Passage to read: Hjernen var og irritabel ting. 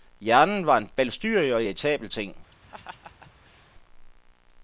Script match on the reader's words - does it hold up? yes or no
no